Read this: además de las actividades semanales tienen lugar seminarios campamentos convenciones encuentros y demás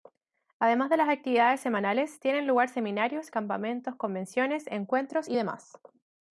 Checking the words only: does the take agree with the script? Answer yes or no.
yes